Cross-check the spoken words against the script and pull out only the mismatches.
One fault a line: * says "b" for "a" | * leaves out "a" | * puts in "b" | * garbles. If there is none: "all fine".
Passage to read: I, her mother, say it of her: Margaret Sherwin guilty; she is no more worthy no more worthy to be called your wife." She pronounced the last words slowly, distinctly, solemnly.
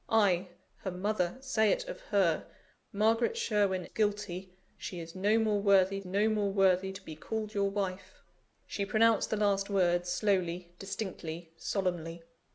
all fine